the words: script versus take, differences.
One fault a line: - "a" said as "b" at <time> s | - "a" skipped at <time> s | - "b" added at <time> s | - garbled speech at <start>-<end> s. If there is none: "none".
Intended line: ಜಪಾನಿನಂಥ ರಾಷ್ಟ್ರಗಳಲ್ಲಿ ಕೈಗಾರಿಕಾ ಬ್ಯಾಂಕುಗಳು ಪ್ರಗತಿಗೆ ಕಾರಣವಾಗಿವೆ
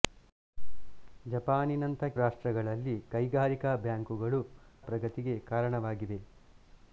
none